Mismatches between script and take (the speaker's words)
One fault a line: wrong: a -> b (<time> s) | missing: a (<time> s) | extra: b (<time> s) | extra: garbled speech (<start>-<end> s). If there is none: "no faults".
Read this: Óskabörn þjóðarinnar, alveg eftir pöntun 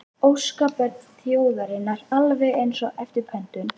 extra: eins og (2.6 s)